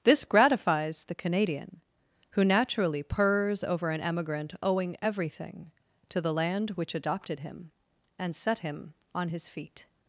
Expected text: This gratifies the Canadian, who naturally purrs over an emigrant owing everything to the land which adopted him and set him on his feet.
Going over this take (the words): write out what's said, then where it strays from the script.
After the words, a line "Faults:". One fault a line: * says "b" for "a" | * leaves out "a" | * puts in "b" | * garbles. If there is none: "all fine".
This gratifies the Canadian, who naturally purrs over an emigrant owing everything to the land which adopted him and set him on his feet.
Faults:
all fine